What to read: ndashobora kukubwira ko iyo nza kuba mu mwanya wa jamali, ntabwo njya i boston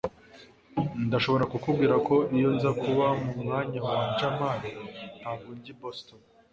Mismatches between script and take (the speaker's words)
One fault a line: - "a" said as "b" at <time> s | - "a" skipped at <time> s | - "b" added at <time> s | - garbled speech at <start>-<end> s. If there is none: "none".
none